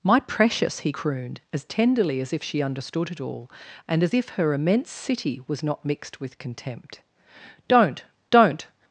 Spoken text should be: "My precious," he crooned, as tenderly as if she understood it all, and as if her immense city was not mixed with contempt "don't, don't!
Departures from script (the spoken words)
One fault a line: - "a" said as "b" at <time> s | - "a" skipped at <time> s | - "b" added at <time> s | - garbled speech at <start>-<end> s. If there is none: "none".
none